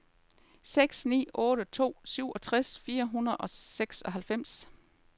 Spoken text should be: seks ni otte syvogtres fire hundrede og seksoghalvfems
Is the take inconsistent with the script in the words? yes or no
yes